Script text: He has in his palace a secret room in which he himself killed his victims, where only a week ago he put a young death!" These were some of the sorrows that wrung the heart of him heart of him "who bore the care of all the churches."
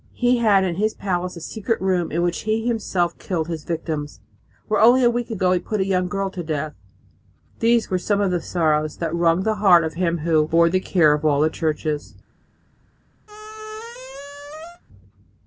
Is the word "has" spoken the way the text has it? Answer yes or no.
no